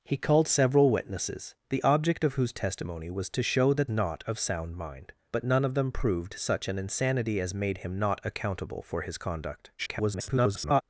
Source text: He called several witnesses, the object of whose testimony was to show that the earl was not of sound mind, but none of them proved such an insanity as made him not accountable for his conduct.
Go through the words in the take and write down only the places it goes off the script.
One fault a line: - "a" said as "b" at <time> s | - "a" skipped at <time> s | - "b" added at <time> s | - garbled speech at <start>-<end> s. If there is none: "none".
- "the earl was" skipped at 3.9 s
- garbled speech at 9.8-10.8 s